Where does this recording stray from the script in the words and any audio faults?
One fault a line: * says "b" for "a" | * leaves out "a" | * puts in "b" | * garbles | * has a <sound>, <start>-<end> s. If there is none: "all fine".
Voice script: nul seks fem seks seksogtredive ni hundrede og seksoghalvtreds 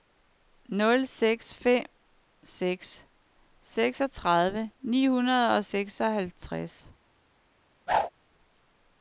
* has a whoosh, 7.9-8.1 s